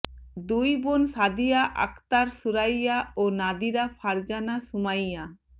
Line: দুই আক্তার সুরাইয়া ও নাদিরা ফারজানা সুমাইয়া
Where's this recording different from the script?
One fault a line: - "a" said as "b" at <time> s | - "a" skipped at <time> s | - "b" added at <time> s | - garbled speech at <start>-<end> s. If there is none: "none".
- "বোন সাদিয়া" added at 0.8 s